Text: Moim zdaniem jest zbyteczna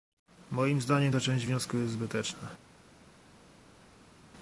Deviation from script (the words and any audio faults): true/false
true